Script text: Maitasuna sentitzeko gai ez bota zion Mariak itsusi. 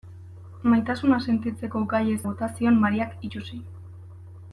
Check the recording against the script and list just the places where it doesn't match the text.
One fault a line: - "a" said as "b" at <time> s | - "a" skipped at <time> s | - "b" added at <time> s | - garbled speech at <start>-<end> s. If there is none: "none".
none